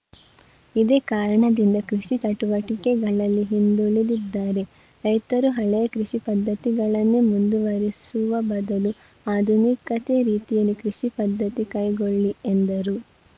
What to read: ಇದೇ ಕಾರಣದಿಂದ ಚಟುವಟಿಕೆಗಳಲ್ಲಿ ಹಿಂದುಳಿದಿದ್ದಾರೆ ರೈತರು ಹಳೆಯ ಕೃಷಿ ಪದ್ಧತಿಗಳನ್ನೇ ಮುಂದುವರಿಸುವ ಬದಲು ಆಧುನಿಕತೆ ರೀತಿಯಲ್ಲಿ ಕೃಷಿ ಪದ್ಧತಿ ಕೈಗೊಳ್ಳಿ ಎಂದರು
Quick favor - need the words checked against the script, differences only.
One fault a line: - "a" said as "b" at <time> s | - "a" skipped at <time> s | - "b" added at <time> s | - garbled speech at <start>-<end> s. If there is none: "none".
- "ಕೃಷಿ" added at 1.9 s